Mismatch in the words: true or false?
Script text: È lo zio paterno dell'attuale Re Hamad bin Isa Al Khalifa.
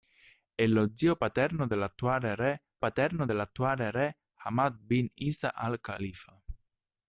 true